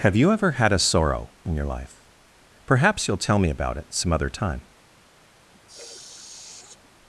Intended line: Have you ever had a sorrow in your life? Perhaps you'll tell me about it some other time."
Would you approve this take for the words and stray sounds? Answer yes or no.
no